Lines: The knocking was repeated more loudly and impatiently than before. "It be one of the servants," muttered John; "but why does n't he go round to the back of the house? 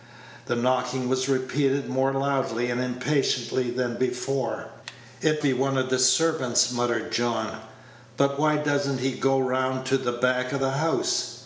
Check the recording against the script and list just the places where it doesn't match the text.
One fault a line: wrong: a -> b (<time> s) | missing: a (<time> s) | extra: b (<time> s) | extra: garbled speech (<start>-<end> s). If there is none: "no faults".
no faults